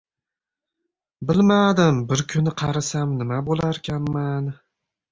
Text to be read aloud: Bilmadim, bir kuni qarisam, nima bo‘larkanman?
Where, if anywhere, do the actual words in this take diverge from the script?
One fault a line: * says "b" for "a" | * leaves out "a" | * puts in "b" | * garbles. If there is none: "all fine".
all fine